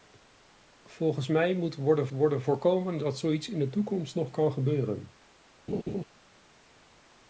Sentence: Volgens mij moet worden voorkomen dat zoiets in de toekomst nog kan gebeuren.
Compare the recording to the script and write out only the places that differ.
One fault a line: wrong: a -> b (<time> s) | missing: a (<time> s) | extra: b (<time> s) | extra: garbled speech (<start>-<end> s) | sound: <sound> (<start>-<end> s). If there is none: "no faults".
extra: worden (2.1 s)
sound: laugh (5.7-6.0 s)